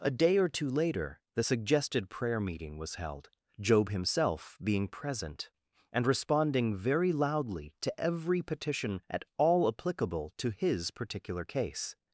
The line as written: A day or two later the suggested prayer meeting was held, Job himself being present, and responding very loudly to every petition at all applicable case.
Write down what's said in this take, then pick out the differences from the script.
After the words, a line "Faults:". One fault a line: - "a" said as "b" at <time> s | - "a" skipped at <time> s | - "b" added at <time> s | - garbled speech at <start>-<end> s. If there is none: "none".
A day or two later the suggested prayer meeting was held, Job himself being present, and responding very loudly to every petition at all applicable to his particular case.
Faults:
- "to his particular" added at 10.4 s